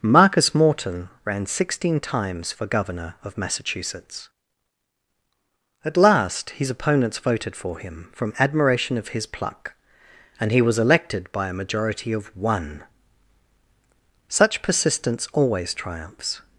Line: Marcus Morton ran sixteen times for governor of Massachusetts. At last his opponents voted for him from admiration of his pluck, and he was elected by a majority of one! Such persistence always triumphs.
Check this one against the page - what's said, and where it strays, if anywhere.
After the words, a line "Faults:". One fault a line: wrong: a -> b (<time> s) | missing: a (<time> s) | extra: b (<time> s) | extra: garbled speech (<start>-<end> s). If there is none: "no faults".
Marcus Morton ran sixteen times for governor of Massachusetts. At last his opponents voted for him from admiration of his pluck, and he was elected by a majority of one! Such persistence always triumphs.
Faults:
no faults